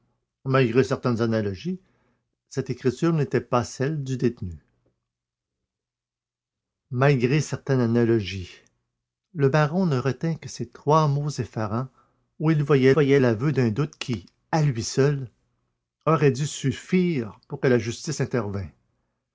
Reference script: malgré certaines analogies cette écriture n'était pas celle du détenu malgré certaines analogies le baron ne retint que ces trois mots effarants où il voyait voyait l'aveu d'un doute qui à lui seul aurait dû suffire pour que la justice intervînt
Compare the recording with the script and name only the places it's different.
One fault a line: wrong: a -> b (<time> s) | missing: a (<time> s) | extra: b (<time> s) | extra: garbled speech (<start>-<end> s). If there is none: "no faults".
no faults